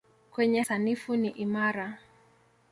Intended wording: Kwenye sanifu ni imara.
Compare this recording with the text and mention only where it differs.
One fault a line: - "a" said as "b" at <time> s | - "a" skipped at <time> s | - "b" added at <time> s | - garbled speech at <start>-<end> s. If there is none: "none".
none